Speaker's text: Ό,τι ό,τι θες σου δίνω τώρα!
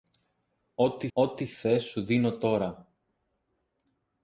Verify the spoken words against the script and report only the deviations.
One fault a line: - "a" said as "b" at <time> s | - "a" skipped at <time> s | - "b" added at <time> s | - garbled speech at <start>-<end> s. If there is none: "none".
none